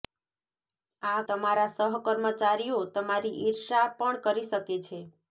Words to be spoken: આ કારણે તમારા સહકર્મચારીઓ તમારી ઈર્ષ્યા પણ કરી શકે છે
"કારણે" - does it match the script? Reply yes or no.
no